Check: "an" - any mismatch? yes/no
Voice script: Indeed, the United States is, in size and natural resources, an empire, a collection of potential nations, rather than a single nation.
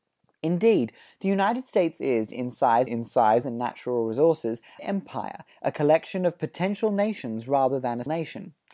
yes